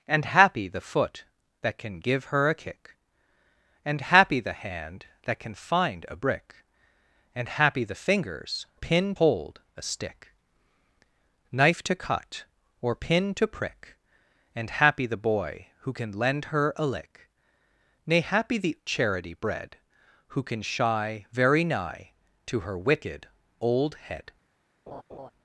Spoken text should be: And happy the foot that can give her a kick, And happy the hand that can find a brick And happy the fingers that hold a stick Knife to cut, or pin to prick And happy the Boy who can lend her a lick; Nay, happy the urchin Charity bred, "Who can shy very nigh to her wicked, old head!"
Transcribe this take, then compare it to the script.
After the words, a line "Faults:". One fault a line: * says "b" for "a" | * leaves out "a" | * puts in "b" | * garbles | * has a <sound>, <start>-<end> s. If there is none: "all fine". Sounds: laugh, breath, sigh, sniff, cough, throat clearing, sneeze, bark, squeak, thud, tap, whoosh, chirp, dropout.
And happy the foot that can give her a kick, And happy the hand that can find a brick And happy the fingers pin hold a stick Knife to cut, or pin to prick And happy the Boy who can lend her a lick; Nay, happy the Charity bred, "Who can shy very nigh to her wicked, old head!"
Faults:
* says "pin" for "that"
* leaves out "urchin"
* has a laugh, 24.9-25.3 s